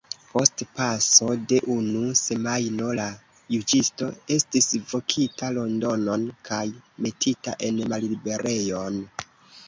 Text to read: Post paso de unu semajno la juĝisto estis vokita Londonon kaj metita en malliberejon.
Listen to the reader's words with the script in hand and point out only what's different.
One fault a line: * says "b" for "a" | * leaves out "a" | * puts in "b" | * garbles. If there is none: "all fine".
all fine